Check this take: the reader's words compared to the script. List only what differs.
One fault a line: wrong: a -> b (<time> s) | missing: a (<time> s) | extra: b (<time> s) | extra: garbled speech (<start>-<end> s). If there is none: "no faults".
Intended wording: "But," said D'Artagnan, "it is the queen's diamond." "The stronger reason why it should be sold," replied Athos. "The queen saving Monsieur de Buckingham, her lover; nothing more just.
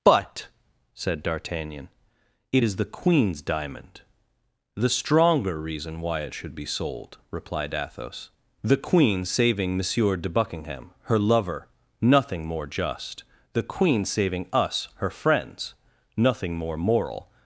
extra: The queen saving us her friends nothing more moral (13.5 s)